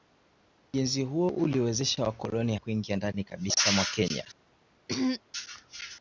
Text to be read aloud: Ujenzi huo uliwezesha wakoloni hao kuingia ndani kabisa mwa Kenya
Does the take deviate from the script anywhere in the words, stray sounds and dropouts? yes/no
yes